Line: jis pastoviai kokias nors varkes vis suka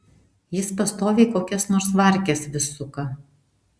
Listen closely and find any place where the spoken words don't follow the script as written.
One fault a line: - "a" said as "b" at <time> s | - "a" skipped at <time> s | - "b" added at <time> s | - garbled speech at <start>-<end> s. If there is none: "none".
none